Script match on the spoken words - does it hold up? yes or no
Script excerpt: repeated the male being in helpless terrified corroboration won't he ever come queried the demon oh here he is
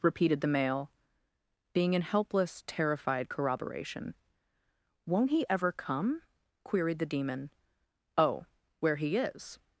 no